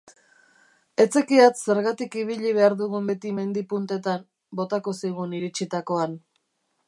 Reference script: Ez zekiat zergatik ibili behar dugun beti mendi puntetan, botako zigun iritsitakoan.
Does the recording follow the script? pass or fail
pass